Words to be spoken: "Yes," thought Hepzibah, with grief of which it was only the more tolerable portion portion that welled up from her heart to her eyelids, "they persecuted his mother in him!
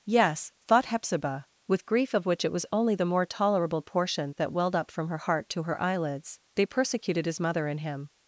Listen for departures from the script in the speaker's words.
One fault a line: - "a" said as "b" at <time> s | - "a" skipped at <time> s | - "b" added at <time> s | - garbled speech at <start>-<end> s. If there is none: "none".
- "portion" skipped at 4.3 s